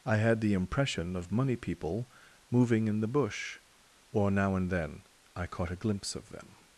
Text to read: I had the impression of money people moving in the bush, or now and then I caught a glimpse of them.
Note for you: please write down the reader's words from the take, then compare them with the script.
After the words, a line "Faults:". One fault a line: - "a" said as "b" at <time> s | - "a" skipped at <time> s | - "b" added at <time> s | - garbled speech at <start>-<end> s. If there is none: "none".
I had the impression of money people moving in the bush, or now and then I caught a glimpse of them.
Faults:
none